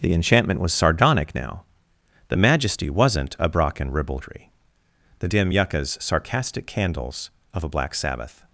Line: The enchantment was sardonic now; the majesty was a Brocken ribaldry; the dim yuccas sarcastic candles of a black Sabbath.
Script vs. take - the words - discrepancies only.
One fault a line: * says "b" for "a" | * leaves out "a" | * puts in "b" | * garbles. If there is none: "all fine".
* says "wasn't" for "was"